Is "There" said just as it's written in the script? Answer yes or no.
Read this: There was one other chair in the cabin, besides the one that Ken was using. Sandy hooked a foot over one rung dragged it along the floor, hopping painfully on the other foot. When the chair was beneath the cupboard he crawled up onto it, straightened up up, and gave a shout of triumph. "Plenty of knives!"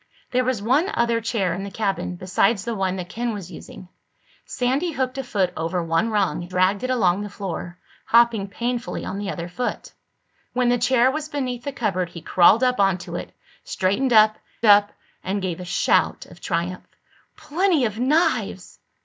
yes